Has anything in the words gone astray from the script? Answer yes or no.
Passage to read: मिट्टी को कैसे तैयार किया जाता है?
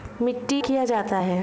yes